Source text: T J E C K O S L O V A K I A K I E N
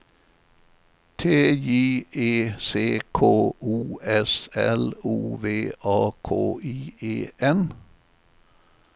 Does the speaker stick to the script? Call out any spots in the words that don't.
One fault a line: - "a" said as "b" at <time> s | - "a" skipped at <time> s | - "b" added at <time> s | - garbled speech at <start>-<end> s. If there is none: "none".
- "A K I" skipped at 6.9 s